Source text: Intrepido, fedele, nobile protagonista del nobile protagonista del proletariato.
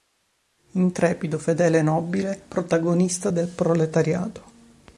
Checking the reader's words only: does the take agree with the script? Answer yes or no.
no